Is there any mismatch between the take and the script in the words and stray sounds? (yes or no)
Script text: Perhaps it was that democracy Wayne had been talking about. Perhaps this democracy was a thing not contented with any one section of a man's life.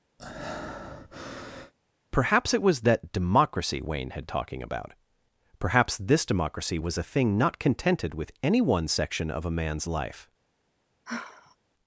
yes